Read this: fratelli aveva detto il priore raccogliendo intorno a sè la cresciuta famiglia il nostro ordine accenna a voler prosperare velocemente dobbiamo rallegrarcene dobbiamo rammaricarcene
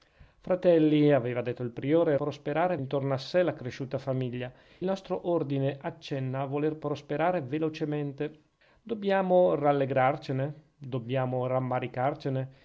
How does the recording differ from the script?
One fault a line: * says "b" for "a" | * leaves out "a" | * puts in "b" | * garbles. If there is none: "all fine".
* says "prosperare" for "raccogliendo"
* leaves out "il"